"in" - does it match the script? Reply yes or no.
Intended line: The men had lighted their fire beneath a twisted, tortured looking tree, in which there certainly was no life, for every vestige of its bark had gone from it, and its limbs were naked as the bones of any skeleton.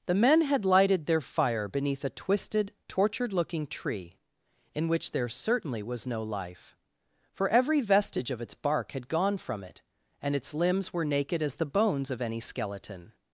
yes